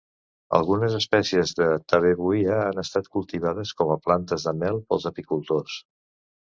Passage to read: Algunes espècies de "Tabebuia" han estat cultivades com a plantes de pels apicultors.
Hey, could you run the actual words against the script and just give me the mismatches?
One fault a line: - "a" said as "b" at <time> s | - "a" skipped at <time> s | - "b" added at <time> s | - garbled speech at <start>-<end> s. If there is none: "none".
- "mel" added at 4.7 s